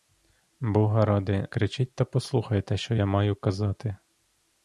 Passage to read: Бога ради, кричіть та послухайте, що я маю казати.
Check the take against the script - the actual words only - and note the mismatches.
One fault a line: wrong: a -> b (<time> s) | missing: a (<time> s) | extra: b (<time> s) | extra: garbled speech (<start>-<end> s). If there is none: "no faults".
no faults